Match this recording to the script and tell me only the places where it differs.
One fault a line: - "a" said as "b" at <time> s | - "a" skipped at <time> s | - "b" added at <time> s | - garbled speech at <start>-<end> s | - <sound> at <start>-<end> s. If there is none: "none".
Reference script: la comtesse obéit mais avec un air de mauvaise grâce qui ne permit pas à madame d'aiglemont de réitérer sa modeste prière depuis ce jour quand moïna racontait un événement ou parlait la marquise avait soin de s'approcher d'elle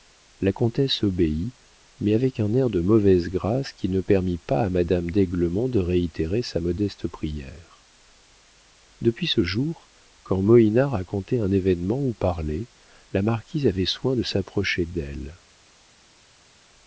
none